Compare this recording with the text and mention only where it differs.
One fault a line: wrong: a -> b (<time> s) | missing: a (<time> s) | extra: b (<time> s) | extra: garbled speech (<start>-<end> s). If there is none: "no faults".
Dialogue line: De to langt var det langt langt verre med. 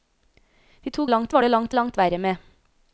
no faults